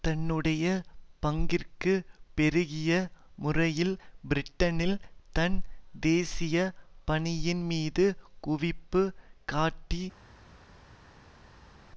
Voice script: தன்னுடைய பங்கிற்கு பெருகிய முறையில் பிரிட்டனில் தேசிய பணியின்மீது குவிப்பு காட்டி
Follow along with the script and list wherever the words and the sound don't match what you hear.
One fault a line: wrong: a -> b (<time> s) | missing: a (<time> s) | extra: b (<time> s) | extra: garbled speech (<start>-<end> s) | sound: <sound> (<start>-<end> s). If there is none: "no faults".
extra: தன் (5.3 s)